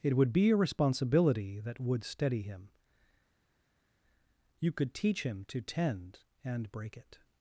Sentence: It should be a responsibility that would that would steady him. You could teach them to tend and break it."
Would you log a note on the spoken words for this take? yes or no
yes